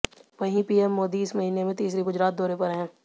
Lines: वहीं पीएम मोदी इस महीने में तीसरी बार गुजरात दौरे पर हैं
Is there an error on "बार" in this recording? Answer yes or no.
yes